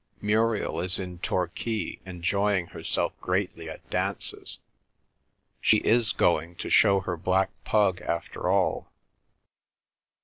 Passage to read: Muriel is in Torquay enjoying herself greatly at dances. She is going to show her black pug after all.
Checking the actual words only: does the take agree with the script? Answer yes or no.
yes